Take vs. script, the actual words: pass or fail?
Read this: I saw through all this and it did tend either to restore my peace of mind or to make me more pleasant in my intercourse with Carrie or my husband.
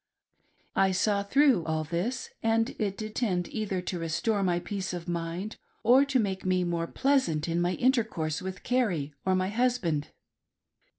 pass